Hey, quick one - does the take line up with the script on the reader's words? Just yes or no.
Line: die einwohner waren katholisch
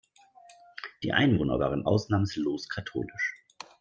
no